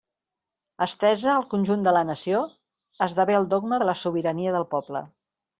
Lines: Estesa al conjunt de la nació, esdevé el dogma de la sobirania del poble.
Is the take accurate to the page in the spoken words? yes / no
yes